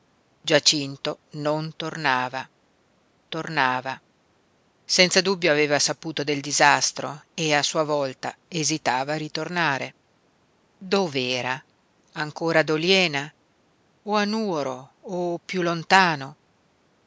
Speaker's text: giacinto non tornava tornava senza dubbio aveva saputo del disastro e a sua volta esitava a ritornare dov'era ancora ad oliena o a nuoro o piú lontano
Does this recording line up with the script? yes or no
yes